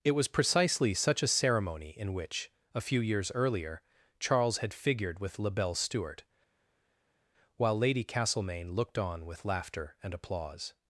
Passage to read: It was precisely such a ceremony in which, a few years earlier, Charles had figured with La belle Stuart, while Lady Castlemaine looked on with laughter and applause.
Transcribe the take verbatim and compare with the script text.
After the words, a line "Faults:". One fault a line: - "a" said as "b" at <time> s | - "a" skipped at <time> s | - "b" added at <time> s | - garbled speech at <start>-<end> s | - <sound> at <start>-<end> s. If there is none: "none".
It was precisely such a ceremony in which, a few years earlier, Charles had figured with La belle Stuart, while Lady Castlemaine looked on with laughter and applause.
Faults:
none